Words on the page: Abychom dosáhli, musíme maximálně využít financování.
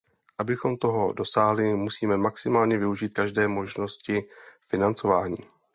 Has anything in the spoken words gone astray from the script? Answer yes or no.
yes